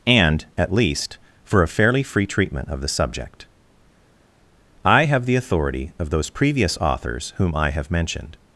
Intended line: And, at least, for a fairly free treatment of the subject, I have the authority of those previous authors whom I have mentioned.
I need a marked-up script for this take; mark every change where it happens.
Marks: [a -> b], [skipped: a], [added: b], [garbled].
And, at least, for a fairly free treatment of the subject, I have the authority of those previous authors whom I have mentioned.